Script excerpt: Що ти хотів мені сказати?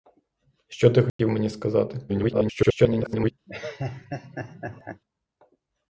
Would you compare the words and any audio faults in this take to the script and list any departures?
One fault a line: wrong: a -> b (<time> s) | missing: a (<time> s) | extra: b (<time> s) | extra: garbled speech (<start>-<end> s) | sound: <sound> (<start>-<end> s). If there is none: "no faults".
sound: dropout (1.1-1.2 s)
extra: garbled speech (2.1-3.3 s)
sound: laugh (3.5-5.0 s)